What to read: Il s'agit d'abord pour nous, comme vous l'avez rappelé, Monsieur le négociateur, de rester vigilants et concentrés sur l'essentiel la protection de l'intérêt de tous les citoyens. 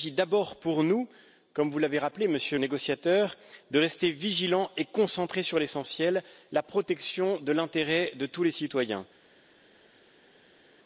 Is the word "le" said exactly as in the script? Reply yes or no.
no